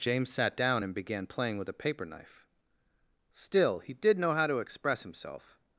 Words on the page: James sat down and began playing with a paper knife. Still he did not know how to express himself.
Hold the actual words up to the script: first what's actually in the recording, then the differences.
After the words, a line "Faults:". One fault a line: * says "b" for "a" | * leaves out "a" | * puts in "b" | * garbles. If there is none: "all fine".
James sat down and began playing with a paper knife. Still he did know how to express himself.
Faults:
* leaves out "not"